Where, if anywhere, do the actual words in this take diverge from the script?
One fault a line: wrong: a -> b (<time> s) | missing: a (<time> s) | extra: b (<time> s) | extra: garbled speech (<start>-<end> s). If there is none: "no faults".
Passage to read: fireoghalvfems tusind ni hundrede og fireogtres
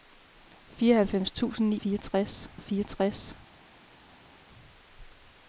wrong: hundrede -> fireogtres (1.7 s)